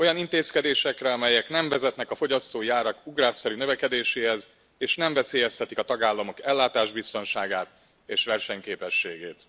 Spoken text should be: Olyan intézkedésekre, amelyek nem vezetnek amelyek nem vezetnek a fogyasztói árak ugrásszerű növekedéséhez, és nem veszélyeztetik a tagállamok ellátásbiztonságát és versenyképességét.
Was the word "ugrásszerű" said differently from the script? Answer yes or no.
no